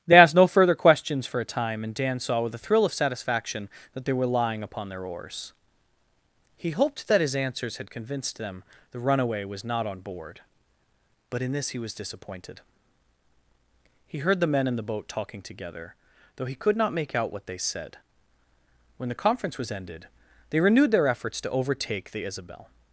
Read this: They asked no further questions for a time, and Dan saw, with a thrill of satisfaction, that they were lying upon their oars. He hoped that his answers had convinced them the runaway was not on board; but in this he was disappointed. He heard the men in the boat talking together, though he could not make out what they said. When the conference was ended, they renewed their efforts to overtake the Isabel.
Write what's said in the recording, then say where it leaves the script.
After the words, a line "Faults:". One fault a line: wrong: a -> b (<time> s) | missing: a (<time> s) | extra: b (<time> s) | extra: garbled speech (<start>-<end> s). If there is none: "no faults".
They asked no further questions for a time, and Dan saw, with a thrill of satisfaction, that they were lying upon their oars. He hoped that his answers had convinced them the runaway was not on board; but in this he was disappointed. He heard the men in the boat talking together, though he could not make out what they said. When the conference was ended, they renewed their efforts to overtake the Isabel.
Faults:
no faults